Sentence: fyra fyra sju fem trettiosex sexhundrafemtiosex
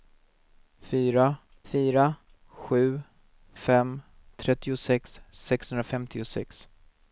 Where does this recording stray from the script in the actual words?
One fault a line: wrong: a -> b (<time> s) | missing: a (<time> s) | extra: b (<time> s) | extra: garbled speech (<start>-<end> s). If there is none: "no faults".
no faults